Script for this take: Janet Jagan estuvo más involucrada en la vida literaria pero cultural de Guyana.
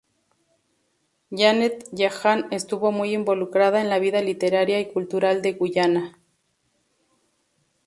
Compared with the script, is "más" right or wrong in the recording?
wrong